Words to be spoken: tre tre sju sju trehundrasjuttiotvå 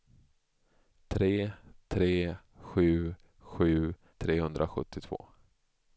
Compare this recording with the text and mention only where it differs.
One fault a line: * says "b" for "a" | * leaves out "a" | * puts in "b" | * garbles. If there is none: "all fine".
all fine